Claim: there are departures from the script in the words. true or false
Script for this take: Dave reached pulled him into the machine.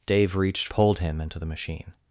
false